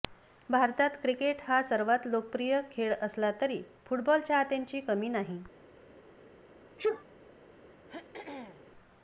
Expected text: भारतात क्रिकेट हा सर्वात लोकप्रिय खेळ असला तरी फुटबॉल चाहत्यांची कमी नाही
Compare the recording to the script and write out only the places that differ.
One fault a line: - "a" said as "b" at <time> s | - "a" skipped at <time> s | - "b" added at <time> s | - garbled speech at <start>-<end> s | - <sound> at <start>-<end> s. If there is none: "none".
- sneeze at 6.8-7.0 s
- throat clearing at 7.9-8.7 s